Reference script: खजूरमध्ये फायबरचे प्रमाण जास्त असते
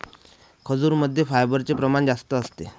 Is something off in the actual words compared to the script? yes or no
no